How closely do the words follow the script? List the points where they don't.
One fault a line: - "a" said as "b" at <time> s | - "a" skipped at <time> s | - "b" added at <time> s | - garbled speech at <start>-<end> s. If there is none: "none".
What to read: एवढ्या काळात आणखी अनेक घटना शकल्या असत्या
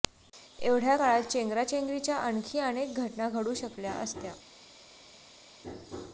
- "चेंगराचेंगरीच्या" added at 1.2 s
- "घडू" added at 3.3 s